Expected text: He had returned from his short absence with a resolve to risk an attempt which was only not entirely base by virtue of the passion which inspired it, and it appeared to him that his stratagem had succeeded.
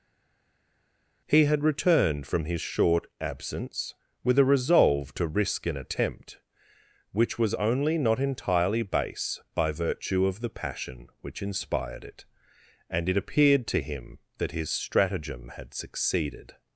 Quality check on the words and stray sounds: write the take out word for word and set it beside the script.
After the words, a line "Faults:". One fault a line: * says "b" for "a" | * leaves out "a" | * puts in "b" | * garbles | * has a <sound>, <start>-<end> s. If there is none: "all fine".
He had returned from his short absence with a resolve to risk an attempt which was only not entirely base by virtue of the passion which inspired it, and it appeared to him that his stratagem had succeeded.
Faults:
all fine